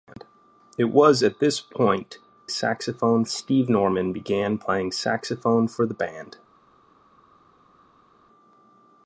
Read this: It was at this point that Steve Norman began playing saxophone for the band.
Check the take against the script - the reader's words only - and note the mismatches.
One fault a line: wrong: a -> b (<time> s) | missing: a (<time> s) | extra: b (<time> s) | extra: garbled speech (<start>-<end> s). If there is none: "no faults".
wrong: that -> saxophone (2.5 s)